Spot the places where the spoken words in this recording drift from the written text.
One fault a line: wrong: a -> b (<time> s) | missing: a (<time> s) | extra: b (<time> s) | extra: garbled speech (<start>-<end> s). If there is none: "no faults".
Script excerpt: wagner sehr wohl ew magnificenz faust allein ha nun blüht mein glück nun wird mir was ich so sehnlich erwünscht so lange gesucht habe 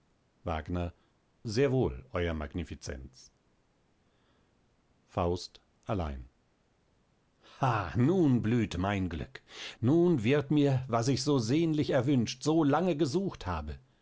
no faults